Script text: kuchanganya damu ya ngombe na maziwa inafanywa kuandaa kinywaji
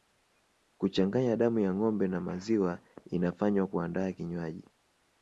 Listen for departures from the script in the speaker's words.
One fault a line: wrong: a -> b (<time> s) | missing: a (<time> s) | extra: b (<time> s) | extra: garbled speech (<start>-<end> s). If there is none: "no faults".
no faults